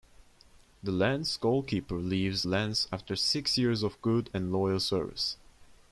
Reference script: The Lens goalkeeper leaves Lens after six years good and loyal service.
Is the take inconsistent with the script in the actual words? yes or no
yes